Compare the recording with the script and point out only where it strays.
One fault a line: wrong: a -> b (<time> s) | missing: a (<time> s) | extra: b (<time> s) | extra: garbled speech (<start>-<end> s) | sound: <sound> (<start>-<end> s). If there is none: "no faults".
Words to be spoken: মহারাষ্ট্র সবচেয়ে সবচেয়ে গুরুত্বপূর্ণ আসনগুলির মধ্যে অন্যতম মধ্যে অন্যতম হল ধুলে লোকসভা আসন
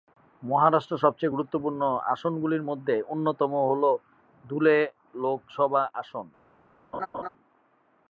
missing: সবচেয়ে (1.4 s)
missing: মধ্যে অন্যতম (3.5 s)
sound: laugh (6.9-7.3 s)